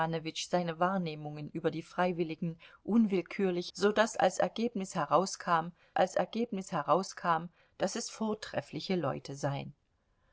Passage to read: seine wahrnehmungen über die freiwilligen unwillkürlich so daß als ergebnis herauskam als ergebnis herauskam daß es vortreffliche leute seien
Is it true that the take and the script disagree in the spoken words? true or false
false